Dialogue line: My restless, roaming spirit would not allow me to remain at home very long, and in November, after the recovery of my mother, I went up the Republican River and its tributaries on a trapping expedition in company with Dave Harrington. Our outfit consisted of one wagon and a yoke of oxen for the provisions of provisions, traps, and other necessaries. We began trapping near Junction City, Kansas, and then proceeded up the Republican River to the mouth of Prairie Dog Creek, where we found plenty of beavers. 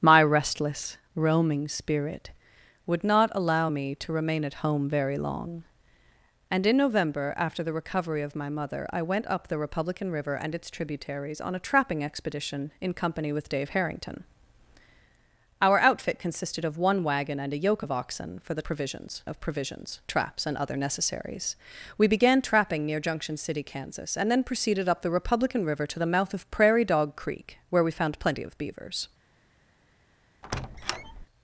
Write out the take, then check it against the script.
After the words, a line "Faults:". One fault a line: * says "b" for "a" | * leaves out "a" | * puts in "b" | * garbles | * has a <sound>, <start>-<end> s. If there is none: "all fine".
My restless, roaming spirit would not allow me to remain at home very long, and in November, after the recovery of my mother, I went up the Republican River and its tributaries on a trapping expedition in company with Dave Harrington. Our outfit consisted of one wagon and a yoke of oxen for the provisions of provisions, traps, and other necessaries. We began trapping near Junction City, Kansas, and then proceeded up the Republican River to the mouth of Prairie Dog Creek, where we found plenty of beavers.
Faults:
* has a squeak, 30.4-31.3 s